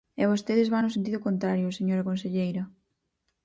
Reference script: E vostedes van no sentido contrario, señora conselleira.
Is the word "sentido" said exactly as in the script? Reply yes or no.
yes